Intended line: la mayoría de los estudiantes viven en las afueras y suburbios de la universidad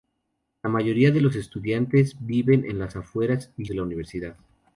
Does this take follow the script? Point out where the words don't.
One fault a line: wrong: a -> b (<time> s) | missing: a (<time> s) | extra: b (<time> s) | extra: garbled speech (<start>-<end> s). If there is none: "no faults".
missing: suburbios (3.6 s)